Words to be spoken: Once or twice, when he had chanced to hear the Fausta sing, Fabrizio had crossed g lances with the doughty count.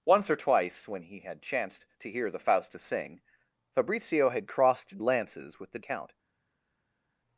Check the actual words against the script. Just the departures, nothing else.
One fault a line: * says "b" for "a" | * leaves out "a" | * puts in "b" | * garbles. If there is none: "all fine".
* leaves out "g"
* leaves out "doughty"